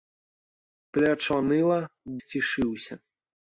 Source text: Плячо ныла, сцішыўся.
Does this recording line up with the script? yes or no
yes